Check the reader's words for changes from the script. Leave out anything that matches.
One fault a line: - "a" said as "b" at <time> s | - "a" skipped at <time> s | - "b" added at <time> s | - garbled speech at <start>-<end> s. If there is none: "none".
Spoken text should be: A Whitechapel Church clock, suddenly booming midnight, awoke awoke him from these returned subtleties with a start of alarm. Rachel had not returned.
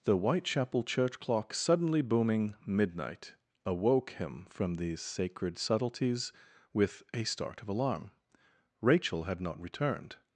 - "A" said as "The" at 0.0 s
- "awoke" skipped at 4.1 s
- "returned" said as "sacred" at 5.0 s